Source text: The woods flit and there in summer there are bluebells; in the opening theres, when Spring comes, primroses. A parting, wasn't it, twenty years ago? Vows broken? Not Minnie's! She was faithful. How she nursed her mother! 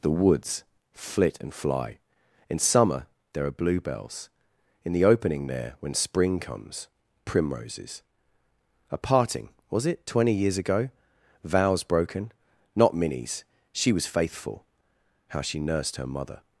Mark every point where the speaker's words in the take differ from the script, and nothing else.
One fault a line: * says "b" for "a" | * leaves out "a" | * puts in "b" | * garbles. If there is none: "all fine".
* says "fly" for "there"
* says "there" for "theres"
* says "was" for "wasn't"